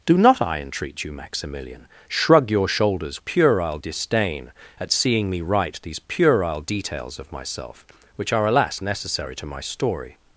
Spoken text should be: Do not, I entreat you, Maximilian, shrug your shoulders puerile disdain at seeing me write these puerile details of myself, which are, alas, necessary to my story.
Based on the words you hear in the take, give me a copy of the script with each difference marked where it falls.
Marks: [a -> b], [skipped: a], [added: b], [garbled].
Do not, I entreat you, Maximilian, shrug your shoulders puerile disdain at seeing me write these puerile details of myself, which are, alas, necessary to my story.